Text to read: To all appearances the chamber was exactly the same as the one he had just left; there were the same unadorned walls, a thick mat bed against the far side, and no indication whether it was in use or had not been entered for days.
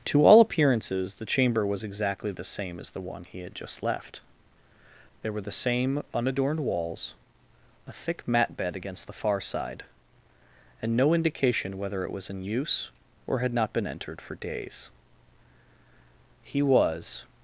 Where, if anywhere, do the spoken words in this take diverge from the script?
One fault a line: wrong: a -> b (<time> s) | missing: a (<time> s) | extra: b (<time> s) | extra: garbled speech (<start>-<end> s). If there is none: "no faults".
extra: He was (16.5 s)